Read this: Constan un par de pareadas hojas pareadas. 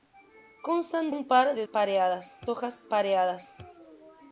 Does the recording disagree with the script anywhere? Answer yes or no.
no